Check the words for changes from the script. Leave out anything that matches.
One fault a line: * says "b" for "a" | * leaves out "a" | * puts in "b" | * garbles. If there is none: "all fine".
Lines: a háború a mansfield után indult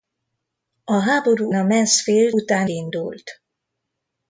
all fine